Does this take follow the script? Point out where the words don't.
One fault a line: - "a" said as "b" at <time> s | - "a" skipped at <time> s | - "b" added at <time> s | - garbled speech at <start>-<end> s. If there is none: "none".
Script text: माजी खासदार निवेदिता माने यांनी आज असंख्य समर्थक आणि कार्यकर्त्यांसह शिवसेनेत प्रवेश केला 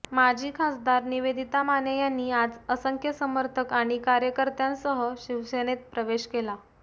none